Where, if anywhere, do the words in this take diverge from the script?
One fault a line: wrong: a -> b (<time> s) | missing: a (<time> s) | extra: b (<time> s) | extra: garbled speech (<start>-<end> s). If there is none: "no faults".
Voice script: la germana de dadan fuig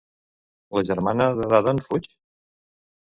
no faults